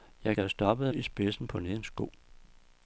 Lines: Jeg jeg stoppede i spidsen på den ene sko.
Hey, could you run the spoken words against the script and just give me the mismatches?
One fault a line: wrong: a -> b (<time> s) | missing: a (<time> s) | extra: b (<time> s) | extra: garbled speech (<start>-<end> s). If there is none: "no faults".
no faults